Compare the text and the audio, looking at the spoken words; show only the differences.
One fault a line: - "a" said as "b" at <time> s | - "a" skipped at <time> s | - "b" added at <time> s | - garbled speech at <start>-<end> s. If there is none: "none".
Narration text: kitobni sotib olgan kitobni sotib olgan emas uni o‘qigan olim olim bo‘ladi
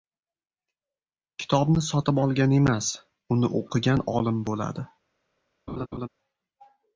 - "kitobni sotib olgan" skipped at 2.6 s
- "olim" skipped at 4.5 s